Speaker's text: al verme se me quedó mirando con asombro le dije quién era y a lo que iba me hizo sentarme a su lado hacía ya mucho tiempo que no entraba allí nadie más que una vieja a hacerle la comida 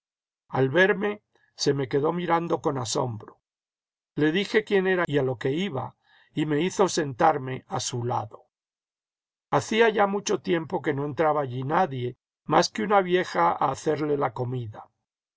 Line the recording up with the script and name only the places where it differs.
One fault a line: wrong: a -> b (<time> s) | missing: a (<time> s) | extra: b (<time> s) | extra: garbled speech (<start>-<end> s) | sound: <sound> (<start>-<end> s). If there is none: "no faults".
extra: y (6.3 s)